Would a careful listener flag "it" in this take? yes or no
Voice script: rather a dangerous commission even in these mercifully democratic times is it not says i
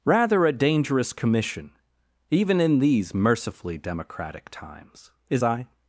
yes